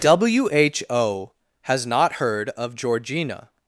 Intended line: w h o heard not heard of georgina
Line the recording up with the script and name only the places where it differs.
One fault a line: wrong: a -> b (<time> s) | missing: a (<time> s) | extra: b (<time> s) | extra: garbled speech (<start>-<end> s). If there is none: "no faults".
wrong: heard -> has (1.6 s)